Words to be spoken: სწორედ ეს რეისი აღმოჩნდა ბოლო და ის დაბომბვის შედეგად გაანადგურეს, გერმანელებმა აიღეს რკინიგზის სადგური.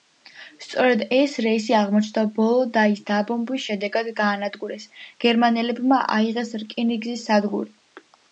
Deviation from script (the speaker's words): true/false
false